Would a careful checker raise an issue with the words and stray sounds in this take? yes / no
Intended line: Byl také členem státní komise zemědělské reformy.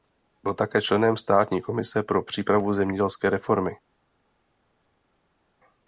yes